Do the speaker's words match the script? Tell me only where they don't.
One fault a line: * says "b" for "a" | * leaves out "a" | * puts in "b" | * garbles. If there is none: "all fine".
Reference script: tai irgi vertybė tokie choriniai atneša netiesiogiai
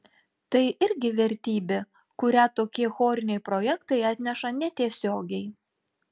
* puts in "kurią"
* puts in "projektai"